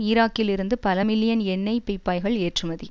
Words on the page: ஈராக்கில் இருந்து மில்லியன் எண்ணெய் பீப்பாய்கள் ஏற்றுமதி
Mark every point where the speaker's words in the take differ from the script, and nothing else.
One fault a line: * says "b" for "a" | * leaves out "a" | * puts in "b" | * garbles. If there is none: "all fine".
* puts in "பல"